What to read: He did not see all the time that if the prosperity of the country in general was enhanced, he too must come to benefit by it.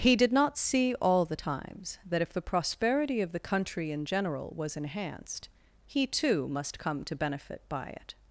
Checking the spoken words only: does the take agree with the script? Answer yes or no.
no